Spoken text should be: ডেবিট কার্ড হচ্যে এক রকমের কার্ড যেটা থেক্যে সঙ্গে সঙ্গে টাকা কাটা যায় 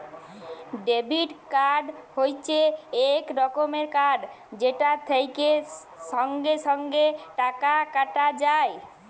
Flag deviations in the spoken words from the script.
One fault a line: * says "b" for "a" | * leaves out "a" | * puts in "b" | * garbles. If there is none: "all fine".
all fine